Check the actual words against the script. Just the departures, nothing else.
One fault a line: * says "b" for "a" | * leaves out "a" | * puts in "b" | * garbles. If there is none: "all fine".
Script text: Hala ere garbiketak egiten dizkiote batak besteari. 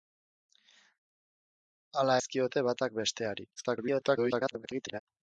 * leaves out "ere garbiketak egiten"
* garbles